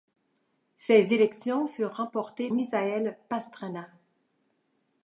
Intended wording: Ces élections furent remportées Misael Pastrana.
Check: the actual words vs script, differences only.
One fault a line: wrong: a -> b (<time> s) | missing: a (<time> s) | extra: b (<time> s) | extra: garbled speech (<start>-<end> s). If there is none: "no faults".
no faults